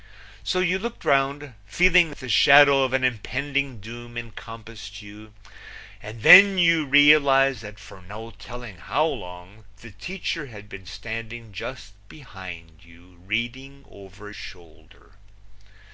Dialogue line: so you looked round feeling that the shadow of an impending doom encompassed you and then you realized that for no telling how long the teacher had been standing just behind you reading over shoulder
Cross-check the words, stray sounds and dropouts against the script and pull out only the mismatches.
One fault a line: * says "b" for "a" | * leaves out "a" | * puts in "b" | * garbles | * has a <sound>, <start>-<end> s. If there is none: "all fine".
all fine